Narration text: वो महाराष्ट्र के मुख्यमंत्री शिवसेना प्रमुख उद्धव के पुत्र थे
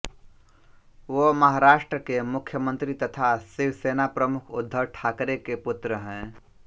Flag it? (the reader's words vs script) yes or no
yes